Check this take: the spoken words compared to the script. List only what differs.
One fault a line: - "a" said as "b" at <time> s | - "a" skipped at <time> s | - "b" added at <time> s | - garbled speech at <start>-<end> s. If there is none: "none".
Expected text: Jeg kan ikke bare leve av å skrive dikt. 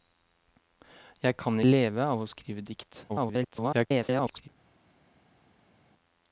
- "ikke bare" skipped at 1.6 s
- garbled speech at 3.1-4.5 s